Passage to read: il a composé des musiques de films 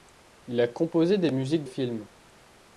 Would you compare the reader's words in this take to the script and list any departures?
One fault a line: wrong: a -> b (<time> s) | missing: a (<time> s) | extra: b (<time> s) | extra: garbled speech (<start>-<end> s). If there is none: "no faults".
missing: de (1.6 s)